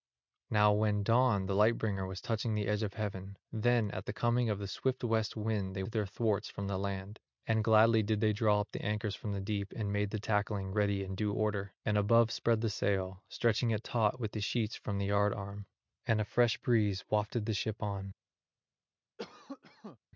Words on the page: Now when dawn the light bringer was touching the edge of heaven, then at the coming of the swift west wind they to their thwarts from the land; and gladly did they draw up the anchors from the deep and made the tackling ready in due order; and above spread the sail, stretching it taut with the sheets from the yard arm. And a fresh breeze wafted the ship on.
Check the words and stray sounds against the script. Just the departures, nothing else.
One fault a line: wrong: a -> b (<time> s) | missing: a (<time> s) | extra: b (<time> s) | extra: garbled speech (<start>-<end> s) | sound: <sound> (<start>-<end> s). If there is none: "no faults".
sound: cough (19.2-20.0 s)